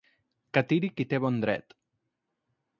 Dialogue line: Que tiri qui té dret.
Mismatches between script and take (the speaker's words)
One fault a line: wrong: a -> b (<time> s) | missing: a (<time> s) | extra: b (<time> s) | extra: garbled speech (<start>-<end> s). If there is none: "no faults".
extra: bon (1.3 s)